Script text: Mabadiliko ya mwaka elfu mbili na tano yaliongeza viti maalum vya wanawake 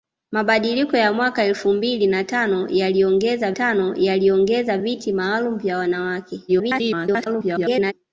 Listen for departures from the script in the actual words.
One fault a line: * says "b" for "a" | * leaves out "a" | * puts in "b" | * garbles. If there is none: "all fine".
* puts in "tano yaliongeza"
* garbles